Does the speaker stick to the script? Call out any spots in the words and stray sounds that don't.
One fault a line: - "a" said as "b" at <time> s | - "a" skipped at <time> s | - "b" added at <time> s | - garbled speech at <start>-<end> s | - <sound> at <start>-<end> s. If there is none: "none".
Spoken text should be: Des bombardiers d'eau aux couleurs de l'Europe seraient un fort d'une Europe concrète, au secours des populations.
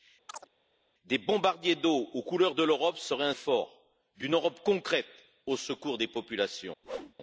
- chirp at 0.3-0.5 s
- whoosh at 6.8-7.1 s